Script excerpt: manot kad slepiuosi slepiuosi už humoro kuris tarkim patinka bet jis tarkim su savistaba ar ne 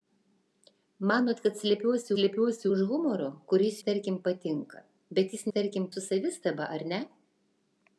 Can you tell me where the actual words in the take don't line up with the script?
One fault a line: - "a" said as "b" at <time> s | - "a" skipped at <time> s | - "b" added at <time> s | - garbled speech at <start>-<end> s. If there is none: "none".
none